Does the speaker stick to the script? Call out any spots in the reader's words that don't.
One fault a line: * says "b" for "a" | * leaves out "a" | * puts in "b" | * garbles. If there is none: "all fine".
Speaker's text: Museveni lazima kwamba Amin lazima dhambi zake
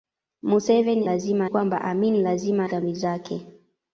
all fine